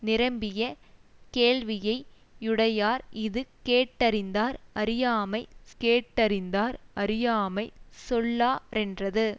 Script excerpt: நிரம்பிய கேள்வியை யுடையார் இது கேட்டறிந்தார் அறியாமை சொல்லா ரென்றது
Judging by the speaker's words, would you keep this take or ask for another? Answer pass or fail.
fail